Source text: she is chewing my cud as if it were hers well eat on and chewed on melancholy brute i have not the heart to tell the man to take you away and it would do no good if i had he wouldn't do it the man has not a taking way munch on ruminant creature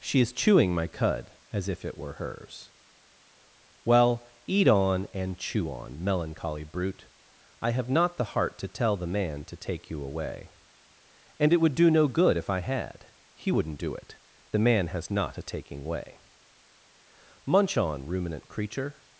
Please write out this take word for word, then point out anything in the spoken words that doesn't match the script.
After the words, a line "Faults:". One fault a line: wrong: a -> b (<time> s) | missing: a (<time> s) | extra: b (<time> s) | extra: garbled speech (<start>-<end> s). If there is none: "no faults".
she is chewing my cud as if it were hers well eat on and chew on melancholy brute i have not the heart to tell the man to take you away and it would do no good if i had he wouldn't do it the man has not a taking way munch on ruminant creature
Faults:
wrong: chewed -> chew (5.4 s)